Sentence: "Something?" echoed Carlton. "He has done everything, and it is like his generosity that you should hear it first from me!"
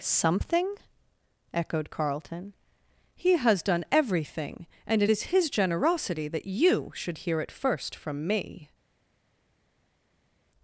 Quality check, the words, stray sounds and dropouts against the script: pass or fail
fail